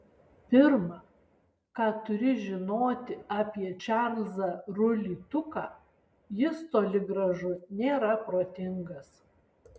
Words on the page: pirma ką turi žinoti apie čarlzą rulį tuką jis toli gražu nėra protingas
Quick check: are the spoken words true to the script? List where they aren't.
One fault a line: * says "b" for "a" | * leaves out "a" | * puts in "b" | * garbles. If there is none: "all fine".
all fine